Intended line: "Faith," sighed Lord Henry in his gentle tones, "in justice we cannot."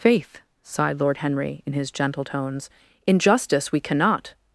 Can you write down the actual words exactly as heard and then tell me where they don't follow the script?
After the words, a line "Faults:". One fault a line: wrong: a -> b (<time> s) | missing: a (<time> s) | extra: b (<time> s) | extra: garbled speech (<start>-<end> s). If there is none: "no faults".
"Faith," sighed Lord Henry in his gentle tones, "in justice we cannot."
Faults:
no faults